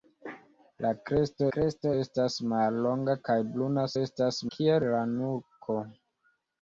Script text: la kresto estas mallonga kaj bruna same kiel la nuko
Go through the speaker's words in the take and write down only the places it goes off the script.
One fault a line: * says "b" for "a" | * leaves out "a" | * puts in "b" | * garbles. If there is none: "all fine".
* puts in "kresto"
* says "estas" for "same"